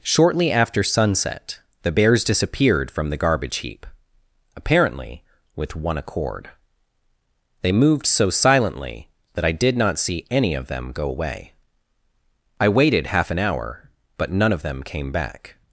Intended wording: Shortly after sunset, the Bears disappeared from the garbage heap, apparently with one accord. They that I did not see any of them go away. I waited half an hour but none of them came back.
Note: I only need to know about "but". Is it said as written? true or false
true